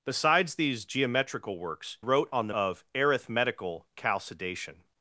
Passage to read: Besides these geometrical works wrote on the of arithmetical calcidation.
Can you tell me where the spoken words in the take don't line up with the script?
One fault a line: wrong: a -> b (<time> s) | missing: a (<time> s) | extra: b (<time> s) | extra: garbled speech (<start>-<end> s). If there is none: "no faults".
no faults